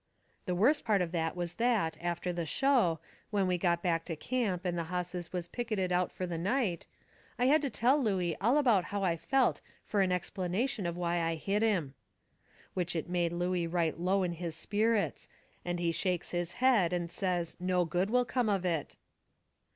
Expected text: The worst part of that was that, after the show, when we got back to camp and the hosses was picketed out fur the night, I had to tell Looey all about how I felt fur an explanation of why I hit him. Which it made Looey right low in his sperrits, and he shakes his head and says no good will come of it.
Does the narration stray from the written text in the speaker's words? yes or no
no